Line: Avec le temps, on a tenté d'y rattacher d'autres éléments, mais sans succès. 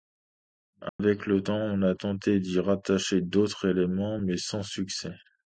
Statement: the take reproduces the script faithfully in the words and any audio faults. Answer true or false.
false